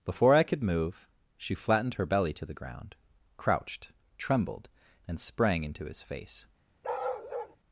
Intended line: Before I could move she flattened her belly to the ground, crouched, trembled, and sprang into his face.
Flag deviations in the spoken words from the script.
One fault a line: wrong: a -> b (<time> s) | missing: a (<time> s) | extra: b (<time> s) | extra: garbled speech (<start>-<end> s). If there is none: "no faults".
no faults